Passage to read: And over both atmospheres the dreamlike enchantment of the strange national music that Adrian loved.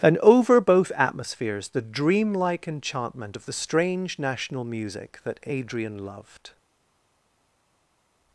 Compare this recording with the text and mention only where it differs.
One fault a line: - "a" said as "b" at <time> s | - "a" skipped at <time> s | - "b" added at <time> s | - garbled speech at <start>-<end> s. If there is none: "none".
none